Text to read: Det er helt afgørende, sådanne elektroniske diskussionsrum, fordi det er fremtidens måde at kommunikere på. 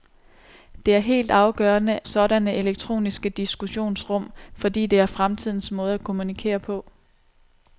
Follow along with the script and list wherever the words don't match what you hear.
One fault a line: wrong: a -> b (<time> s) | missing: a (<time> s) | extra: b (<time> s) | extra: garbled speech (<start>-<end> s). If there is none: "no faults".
no faults